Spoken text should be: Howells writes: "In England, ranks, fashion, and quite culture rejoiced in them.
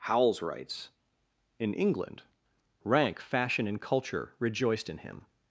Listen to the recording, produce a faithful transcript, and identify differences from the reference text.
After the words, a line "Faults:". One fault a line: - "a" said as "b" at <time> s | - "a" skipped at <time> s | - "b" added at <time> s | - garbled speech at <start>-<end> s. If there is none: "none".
Howells writes: "In England, rank, fashion, and culture rejoiced in him.
Faults:
- "ranks" said as "rank" at 2.8 s
- "quite" skipped at 3.8 s
- "them" said as "him" at 5.0 s